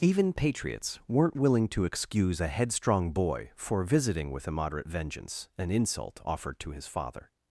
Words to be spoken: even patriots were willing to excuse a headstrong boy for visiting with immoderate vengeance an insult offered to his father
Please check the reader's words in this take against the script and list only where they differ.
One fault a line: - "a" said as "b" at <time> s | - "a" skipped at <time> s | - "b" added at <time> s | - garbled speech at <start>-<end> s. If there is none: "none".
- "were" said as "weren't" at 1.1 s